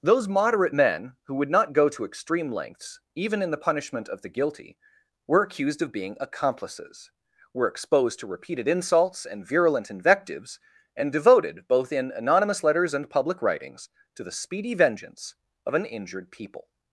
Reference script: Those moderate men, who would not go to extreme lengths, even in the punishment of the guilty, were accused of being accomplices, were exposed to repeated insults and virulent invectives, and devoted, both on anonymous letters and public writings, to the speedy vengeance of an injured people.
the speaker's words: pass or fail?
fail